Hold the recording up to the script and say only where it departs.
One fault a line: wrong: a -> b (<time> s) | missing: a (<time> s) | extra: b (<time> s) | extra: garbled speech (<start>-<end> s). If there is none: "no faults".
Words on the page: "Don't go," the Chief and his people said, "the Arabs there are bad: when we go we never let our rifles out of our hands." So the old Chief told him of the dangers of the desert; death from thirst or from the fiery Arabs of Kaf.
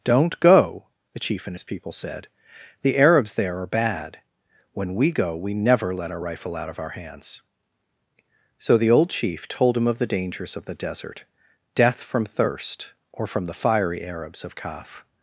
wrong: rifles -> rifle (6.2 s)